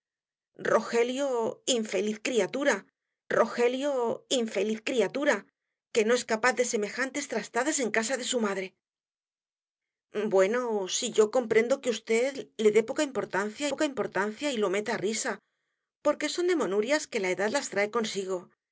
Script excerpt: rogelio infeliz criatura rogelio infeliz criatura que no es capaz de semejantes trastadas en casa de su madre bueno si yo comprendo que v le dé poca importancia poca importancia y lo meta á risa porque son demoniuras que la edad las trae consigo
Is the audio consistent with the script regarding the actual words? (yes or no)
yes